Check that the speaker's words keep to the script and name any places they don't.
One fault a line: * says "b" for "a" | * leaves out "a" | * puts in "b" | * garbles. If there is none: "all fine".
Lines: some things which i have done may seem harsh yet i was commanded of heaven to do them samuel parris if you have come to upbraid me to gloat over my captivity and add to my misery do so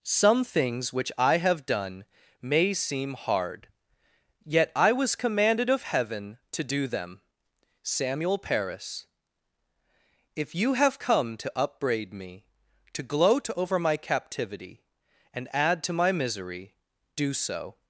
* says "hard" for "harsh"